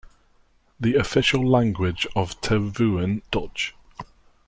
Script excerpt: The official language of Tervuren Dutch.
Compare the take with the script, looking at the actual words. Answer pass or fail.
pass